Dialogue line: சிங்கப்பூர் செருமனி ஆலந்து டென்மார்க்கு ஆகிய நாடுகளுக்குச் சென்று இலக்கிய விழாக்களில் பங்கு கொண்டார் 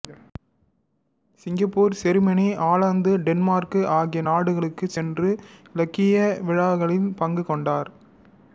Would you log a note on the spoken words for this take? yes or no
no